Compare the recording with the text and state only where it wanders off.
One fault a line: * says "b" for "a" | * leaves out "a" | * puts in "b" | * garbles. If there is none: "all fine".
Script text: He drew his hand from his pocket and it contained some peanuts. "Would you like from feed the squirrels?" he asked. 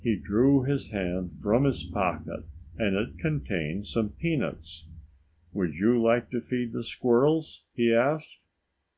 * says "to" for "from"